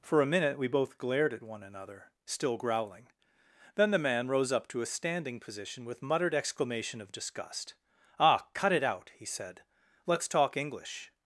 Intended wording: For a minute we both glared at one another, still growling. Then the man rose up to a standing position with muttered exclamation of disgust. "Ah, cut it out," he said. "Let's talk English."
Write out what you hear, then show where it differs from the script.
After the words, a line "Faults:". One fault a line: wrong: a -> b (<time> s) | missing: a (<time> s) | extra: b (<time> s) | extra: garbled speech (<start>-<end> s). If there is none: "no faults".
For a minute we both glared at one another, still growling. Then the man rose up to a standing position with muttered exclamation of disgust. "Ah, cut it out," he said. "Let's talk English."
Faults:
no faults